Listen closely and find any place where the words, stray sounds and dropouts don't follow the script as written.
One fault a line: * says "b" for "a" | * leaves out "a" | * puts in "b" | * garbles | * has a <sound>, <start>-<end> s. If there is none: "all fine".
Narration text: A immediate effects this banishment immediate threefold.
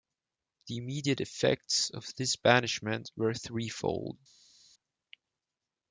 * says "The" for "A"
* puts in "of"
* says "were" for "immediate"